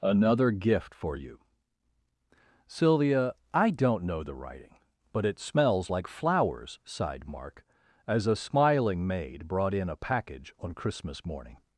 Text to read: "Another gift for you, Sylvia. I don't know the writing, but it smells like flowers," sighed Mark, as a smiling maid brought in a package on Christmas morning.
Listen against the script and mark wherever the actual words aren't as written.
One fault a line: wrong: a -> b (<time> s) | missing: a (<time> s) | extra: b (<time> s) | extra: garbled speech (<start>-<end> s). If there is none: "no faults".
no faults